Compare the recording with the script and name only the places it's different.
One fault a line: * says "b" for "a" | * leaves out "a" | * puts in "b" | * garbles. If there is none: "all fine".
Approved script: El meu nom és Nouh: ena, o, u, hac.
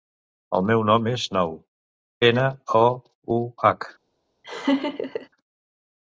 all fine